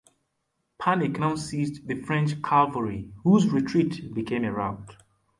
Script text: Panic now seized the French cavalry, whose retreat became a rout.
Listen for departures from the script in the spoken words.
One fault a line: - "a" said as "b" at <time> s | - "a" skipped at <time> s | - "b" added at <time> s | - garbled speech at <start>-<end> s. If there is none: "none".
none